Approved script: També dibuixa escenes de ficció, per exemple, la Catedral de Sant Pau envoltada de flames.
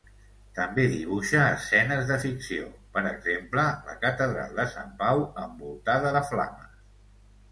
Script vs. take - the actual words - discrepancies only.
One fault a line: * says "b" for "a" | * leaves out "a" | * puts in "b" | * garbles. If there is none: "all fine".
all fine